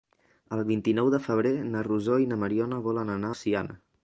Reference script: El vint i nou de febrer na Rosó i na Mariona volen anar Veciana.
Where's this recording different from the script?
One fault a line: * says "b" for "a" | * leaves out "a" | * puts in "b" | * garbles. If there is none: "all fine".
all fine